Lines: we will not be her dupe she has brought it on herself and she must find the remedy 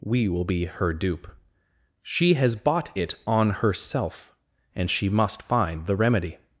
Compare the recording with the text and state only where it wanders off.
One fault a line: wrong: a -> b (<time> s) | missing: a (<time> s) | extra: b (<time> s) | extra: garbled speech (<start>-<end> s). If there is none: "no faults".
missing: not (0.5 s)
wrong: brought -> bought (2.5 s)